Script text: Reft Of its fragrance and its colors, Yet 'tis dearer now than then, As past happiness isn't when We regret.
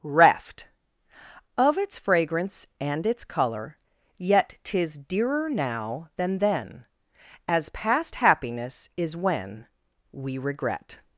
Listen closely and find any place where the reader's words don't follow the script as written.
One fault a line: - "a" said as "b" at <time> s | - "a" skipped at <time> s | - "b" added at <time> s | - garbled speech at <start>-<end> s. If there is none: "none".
- "colors" said as "color" at 3.2 s
- "isn't" said as "is" at 8.9 s